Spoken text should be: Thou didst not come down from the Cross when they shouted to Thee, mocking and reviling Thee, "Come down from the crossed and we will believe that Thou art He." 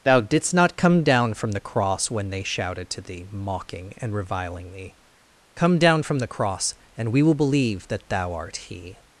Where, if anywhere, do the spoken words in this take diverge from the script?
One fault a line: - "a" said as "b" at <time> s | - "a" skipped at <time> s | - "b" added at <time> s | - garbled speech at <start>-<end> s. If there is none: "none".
- "crossed" said as "cross" at 6.3 s